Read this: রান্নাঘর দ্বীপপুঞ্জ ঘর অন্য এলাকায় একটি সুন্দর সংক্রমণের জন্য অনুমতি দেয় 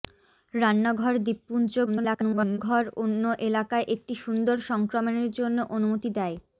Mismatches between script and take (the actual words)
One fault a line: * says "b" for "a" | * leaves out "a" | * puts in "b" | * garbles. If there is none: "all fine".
* garbles